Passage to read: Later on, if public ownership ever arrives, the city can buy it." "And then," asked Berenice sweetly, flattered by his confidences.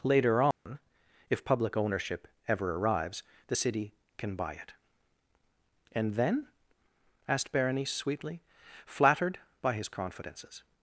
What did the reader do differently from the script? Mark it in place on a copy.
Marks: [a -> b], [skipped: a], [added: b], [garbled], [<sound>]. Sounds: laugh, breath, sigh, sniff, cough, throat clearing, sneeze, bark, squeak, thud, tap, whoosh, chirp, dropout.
Later on, [dropout] if public ownership ever arrives, the city can buy it." "And then," asked Berenice sweetly, flattered by his confidences.